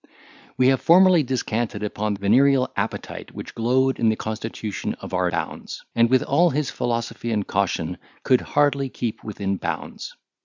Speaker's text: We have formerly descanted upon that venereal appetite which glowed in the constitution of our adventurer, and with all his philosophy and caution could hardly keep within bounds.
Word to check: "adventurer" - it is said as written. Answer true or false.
false